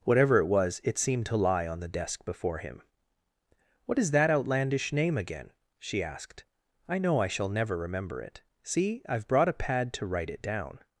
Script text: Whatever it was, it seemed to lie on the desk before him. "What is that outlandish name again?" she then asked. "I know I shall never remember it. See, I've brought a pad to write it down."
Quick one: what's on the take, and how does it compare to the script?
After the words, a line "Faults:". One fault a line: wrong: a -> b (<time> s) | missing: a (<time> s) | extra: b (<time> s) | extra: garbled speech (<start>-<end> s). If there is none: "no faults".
Whatever it was, it seemed to lie on the desk before him. "What is that outlandish name again?" she asked. "I know I shall never remember it. See, I've brought a pad to write it down."
Faults:
missing: then (6.0 s)